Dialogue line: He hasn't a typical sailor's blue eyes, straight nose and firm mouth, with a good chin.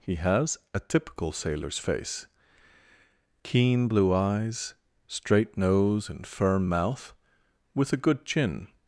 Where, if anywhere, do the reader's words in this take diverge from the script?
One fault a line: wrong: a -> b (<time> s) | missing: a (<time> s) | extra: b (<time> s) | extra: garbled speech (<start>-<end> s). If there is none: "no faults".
wrong: hasn't -> has (0.1 s)
extra: face keen (1.8 s)